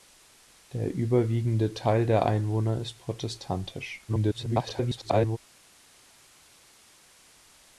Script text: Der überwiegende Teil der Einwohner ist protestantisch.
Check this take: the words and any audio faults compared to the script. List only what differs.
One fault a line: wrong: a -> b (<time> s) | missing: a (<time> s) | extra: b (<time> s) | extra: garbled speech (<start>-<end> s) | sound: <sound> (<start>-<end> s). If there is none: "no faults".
extra: garbled speech (4.1-5.4 s)